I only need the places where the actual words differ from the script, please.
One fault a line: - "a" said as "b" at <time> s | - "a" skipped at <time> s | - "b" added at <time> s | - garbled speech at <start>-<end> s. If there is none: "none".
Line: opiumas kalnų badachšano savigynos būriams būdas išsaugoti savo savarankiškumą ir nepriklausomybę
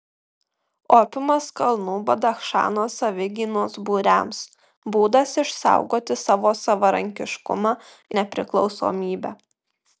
- "ir" skipped at 7.7 s